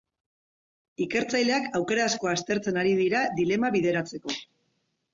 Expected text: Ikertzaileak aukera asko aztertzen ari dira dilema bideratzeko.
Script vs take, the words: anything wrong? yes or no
no